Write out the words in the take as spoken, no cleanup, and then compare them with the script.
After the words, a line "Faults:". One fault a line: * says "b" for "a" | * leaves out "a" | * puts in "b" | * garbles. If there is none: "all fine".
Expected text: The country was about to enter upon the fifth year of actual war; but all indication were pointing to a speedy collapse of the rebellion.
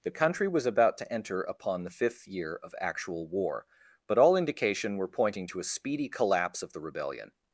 The country was about to enter upon the fifth year of actual war; but all indication were pointing to a speedy collapse of the rebellion.
Faults:
all fine